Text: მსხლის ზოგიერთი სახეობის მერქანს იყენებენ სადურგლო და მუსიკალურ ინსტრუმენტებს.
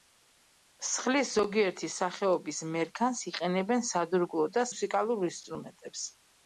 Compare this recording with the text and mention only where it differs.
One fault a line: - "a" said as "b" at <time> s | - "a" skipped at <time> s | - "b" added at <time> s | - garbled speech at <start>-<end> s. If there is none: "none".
none